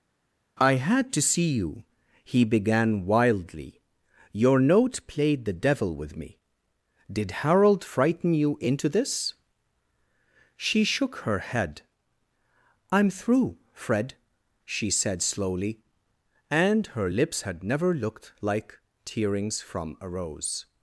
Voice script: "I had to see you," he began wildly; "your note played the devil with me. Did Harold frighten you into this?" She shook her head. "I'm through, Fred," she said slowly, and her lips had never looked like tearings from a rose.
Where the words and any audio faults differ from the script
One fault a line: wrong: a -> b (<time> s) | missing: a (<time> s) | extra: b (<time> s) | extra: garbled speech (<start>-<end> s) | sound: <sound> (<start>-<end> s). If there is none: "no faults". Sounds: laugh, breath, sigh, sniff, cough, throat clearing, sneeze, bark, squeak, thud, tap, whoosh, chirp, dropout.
no faults